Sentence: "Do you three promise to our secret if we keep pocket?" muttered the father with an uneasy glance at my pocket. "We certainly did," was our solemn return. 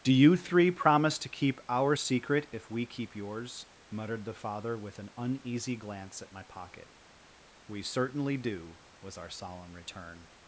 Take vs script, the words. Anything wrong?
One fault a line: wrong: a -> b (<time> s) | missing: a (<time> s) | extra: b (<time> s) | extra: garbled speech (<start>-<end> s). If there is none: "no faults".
extra: keep (1.3 s)
wrong: pocket -> yours (3.2 s)
wrong: did -> do (8.4 s)